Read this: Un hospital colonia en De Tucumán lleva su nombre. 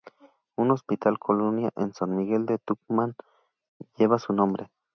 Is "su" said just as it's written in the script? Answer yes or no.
yes